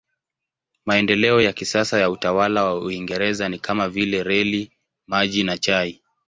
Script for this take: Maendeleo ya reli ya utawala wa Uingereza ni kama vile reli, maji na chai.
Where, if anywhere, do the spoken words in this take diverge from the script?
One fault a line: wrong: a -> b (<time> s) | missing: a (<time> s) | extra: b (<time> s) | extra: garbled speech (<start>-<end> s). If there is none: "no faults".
wrong: reli -> kisasa (1.5 s)